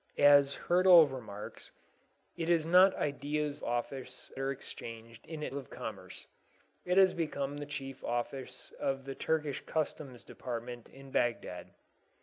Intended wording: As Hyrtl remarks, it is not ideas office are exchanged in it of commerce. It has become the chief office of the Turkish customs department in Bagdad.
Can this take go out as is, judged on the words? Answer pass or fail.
pass